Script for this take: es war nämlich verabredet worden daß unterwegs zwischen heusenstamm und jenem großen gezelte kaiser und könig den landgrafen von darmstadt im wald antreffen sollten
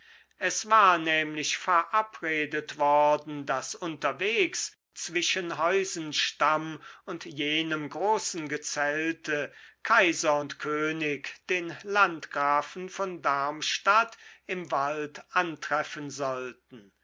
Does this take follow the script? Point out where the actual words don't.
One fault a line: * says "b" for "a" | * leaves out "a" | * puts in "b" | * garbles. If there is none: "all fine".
all fine